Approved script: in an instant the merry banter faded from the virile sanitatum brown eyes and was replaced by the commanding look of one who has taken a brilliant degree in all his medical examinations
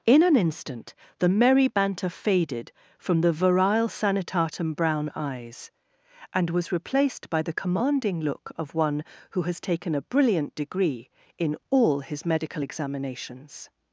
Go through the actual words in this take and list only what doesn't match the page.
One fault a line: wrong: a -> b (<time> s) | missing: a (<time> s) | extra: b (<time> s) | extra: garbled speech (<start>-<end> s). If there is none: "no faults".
no faults